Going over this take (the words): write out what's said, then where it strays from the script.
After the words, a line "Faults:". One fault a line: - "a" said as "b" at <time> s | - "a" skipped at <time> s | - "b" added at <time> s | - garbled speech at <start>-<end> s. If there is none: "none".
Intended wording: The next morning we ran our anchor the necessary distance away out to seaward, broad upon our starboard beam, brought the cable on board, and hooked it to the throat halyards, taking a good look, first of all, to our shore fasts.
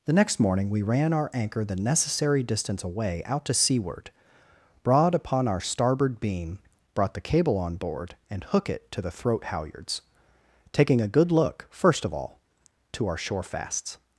The next morning we ran our anchor the necessary distance away out to seaward, broad upon our starboard beam, brought the cable on board, and hook it to the throat halyards, taking a good look, first of all, to our shore fasts.
Faults:
- "hooked" said as "hook" at 8.5 s